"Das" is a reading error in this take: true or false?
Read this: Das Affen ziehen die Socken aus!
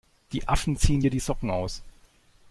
true